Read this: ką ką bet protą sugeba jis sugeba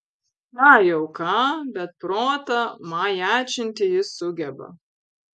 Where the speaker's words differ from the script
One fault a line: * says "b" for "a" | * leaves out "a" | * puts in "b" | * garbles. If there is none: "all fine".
* puts in "jau"
* says "majačinti" for "sugeba"